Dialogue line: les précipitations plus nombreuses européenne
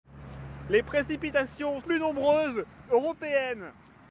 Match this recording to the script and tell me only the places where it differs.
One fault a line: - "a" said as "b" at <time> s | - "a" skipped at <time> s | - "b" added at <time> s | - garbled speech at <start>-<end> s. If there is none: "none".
none